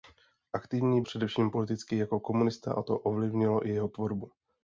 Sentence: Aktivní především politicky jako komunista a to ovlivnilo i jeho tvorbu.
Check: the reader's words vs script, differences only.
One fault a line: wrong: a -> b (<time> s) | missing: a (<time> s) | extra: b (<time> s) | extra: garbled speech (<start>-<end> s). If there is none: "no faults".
no faults